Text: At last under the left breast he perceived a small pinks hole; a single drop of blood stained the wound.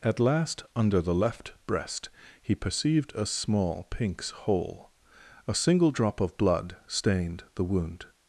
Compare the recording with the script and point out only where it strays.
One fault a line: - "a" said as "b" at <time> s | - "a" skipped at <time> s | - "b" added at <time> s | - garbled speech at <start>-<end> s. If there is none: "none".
none